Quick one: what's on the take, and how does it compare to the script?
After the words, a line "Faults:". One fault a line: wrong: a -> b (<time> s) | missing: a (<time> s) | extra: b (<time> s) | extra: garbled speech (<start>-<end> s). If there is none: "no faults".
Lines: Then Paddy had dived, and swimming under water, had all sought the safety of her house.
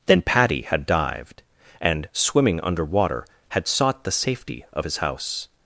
Then Paddy had dived, and swimming under water, had sought the safety of his house.
Faults:
missing: all (3.7 s)
wrong: her -> his (4.8 s)